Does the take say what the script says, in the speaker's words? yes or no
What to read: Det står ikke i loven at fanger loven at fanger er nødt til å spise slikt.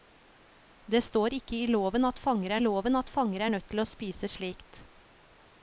yes